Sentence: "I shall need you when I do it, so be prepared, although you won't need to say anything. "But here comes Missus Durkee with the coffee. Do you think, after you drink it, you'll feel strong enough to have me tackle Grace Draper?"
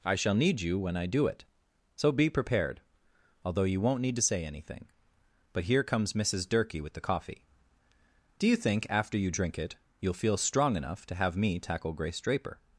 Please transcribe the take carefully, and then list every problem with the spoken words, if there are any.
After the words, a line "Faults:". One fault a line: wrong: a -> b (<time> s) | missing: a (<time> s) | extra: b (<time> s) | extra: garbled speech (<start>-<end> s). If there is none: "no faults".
"I shall need you when I do it, so be prepared, although you won't need to say anything. "But here comes Missus Durkee with the coffee. Do you think, after you drink it, you'll feel strong enough to have me tackle Grace Draper?"
Faults:
no faults